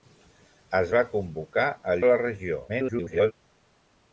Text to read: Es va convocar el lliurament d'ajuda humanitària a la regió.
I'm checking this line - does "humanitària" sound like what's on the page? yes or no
no